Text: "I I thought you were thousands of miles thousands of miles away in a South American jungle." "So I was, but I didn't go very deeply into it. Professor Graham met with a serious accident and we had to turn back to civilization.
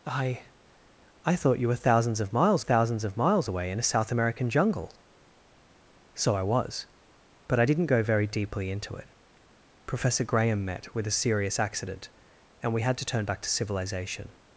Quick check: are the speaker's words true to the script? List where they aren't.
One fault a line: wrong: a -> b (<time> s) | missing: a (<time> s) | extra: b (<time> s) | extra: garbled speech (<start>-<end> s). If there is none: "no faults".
no faults